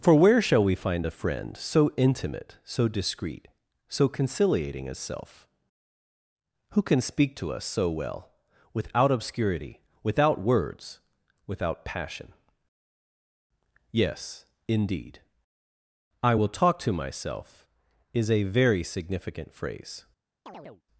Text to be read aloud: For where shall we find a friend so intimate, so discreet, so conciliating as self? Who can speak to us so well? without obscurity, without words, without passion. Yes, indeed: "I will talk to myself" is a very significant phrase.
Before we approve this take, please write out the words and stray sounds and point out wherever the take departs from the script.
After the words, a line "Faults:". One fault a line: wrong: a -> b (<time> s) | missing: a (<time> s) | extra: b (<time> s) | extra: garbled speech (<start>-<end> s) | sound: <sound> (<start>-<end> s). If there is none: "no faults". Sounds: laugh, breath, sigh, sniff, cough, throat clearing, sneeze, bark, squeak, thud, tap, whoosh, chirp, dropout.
For where shall we find a friend so intimate, so discreet, so conciliating as self? Who can speak to us so well? without obscurity, without words, without passion. Yes, indeed: "I will talk to myself" is a very significant phrase.
Faults:
sound: chirp (20.5-20.8 s)